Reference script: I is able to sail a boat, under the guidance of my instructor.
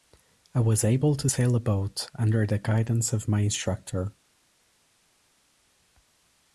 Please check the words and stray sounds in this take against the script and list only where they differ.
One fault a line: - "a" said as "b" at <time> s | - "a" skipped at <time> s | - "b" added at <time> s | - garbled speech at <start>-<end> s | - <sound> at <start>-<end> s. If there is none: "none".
- "is" said as "was" at 0.6 s